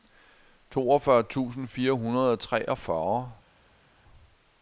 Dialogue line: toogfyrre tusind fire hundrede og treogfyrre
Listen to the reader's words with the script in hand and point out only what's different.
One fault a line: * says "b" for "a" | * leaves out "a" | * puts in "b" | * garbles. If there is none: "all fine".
all fine